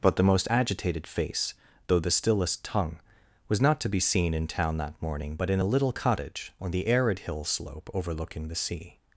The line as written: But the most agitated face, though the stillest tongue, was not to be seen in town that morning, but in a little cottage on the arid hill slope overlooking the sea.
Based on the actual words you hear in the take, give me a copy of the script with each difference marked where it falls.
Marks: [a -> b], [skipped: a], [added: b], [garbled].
But the most agitated face, though the stillest tongue, was not to be seen in town that morning, but in a little cottage on the arid hill slope overlooking the sea.